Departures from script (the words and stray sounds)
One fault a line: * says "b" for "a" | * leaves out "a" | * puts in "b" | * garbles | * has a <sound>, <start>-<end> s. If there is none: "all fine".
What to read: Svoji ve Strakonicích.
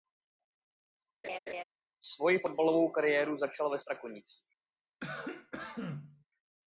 * has a laugh, 1.2-1.6 s
* puts in "fotbalovou kariéru začal"
* has a cough, 5.0-6.2 s